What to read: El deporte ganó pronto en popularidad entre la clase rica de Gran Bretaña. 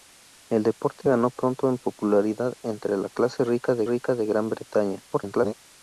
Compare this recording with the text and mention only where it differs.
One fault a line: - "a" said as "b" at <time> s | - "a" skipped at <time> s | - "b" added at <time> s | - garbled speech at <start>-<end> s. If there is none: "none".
- "rica de" added at 3.8 s
- garbled speech at 5.1-5.5 s